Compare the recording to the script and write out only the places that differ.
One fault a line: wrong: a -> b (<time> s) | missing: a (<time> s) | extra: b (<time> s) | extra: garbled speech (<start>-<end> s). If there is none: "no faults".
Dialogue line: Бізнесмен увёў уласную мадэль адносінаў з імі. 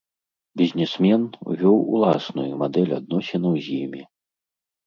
no faults